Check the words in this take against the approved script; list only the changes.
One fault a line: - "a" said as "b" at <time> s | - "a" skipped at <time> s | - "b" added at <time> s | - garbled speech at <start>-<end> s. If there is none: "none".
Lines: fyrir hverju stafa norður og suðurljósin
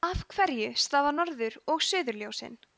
- "fyrir" said as "af" at 0.1 s